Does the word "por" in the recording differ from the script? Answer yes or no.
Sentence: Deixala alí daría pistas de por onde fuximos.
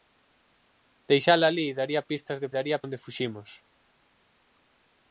yes